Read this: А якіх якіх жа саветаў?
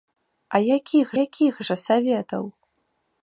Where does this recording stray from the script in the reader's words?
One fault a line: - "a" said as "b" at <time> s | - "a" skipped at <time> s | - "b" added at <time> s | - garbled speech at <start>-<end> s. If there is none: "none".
none